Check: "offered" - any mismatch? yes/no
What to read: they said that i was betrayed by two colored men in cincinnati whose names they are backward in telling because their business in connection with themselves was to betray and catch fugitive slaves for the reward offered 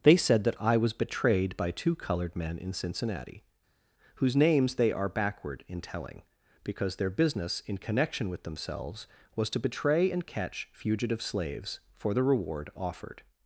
no